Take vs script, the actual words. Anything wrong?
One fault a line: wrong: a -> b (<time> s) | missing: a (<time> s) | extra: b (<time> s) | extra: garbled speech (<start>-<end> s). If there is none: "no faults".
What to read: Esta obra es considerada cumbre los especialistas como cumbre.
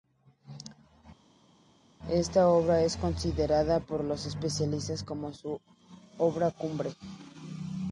wrong: cumbre -> por (3.8 s)
extra: su obra (5.3 s)